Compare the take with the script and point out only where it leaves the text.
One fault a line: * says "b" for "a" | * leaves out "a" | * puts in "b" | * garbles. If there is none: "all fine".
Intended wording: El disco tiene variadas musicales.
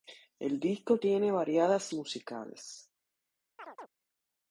all fine